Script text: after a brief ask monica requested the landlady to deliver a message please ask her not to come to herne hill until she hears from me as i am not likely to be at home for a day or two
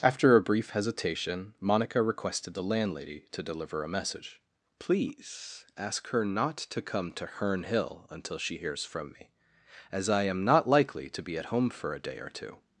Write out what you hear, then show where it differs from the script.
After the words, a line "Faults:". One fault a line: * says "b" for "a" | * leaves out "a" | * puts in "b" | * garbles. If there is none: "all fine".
after a brief hesitation monica requested the landlady to deliver a message please ask her not to come to herne hill until she hears from me as i am not likely to be at home for a day or two
Faults:
* says "hesitation" for "ask"